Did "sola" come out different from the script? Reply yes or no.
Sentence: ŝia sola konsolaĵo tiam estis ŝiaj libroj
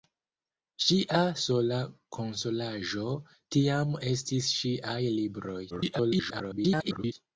no